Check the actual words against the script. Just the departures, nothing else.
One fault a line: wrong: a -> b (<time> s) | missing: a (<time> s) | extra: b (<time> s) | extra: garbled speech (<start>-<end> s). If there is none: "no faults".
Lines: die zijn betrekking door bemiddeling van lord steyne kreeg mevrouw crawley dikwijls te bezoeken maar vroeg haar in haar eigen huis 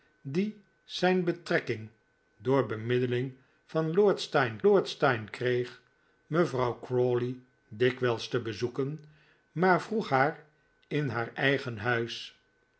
extra: lord steyne (4.6 s)